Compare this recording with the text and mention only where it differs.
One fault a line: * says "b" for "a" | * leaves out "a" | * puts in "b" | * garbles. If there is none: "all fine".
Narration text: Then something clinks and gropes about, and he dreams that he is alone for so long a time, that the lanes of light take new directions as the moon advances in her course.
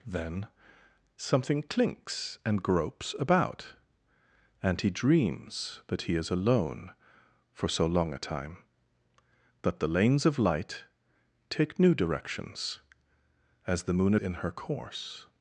* leaves out "advances"